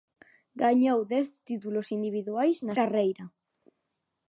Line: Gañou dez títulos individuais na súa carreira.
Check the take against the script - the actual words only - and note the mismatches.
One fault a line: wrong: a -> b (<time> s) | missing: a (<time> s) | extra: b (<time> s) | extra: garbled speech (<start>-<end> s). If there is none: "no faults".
missing: súa (2.7 s)